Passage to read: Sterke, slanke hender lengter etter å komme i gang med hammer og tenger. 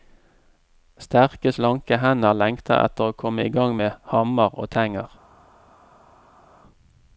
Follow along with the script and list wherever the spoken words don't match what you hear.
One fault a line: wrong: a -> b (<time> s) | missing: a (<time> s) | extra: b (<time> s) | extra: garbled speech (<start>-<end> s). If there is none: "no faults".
no faults